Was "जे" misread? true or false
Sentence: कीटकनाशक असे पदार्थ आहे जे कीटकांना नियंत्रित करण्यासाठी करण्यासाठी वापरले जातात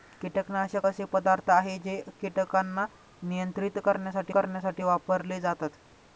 false